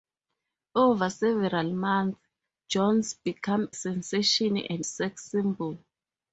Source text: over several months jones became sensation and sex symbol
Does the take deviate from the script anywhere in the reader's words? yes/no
no